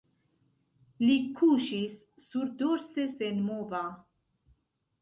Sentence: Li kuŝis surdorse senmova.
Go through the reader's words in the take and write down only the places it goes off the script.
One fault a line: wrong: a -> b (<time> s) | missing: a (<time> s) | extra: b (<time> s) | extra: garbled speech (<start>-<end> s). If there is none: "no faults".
no faults